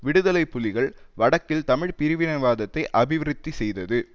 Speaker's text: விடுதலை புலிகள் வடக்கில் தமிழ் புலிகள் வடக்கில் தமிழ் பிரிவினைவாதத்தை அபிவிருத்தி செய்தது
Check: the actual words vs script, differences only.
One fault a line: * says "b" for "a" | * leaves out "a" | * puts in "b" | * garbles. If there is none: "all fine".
* leaves out "புலிகள் வடக்கில் தமிழ்"